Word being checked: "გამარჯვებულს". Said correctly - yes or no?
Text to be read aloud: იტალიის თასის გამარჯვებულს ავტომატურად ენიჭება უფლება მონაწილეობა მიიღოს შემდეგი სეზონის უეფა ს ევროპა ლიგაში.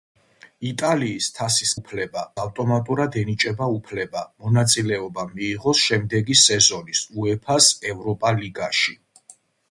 no